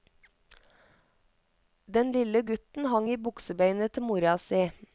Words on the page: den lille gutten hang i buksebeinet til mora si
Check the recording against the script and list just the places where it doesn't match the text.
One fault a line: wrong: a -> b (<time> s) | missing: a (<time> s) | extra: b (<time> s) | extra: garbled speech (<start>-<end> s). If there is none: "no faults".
no faults